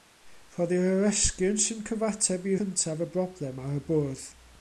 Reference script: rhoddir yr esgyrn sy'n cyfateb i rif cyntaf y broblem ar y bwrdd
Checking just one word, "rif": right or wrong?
wrong